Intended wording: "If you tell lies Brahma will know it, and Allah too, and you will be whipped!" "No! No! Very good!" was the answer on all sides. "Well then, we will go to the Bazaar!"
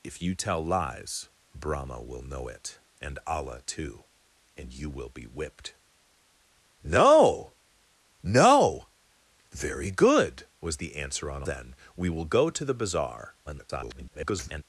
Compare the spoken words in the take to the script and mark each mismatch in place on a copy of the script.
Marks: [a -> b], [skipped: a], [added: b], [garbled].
"If you tell lies Brahma will know it, and Allah too, and you will be whipped!" "No! No! Very good!" was the answer on [skipped: all sides. "Well] then, we will go to the Bazaar!" [garbled]